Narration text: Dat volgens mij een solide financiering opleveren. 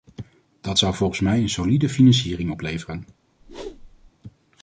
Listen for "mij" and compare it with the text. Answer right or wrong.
right